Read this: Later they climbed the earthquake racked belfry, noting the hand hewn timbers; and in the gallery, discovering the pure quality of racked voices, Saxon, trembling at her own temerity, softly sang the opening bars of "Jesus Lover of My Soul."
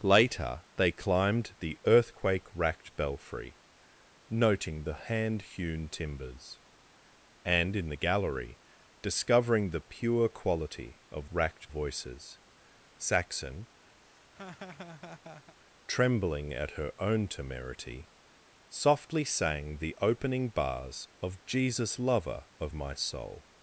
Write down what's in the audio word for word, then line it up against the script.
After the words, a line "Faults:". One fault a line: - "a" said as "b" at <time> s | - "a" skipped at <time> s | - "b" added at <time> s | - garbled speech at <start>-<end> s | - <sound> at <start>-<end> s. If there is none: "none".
Later they climbed the earthquake racked belfry, noting the hand hewn timbers; and in the gallery, discovering the pure quality of racked voices, Saxon, trembling at her own temerity, softly sang the opening bars of "Jesus Lover of My Soul."
Faults:
- laugh at 14.0-15.6 s